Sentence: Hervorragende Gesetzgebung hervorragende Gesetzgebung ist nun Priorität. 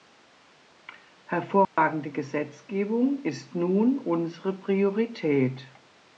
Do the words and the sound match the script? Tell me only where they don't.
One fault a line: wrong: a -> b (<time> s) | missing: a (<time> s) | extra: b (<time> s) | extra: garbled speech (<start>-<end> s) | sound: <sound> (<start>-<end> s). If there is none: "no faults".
sound: dropout (1.6-1.8 s)
missing: hervorragende Gesetzgebung (3.2 s)
extra: unsere (4.0 s)